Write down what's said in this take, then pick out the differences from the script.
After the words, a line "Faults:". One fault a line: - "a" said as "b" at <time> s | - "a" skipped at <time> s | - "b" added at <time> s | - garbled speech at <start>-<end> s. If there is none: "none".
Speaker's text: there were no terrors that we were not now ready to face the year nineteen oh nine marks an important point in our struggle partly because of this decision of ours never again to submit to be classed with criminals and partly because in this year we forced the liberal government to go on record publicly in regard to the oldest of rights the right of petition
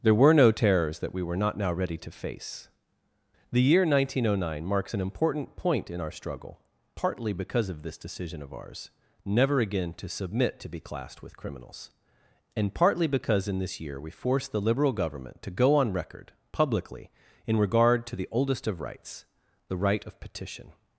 there were no terrors that we were not now ready to face the year nineteen oh nine marks an important point in our struggle partly because of this decision of ours never again to submit to be classed with criminals and partly because in this year we forced the liberal government to go on record publicly in regard to the oldest of rights the right of petition
Faults:
none